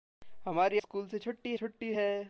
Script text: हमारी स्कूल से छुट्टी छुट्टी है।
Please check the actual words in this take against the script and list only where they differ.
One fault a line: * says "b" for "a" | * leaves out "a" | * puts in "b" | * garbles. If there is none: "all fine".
all fine